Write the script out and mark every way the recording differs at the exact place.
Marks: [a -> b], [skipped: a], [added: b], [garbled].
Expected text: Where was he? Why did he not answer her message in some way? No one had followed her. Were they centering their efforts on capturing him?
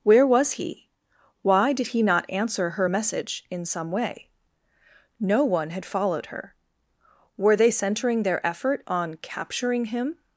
Where was he? Why did he not answer her message in some way? No one had followed her. Were they centering their [efforts -> effort] on capturing him?